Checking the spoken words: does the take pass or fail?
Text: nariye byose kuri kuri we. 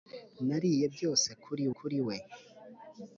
pass